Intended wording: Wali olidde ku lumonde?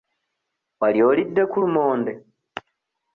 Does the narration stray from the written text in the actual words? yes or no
no